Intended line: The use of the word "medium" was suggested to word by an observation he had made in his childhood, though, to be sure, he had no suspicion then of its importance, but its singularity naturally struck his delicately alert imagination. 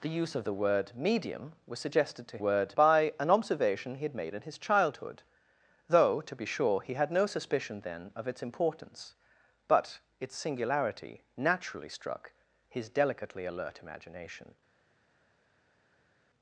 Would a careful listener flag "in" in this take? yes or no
no